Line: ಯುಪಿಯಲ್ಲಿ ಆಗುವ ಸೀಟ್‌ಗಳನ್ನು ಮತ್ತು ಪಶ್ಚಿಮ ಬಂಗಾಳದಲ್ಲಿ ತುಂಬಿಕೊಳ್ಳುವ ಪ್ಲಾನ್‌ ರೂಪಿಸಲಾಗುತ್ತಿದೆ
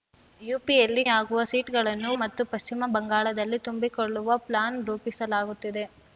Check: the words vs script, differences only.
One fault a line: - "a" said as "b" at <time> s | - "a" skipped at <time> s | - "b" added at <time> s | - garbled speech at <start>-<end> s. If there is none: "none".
none